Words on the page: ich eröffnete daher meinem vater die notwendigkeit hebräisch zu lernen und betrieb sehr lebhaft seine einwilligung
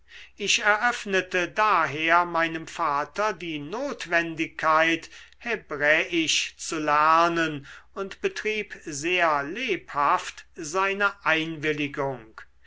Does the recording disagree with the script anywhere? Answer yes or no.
no